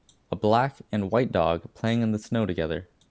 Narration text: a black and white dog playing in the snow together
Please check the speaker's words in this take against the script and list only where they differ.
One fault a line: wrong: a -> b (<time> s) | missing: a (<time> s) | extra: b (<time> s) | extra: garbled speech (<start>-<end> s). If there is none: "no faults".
no faults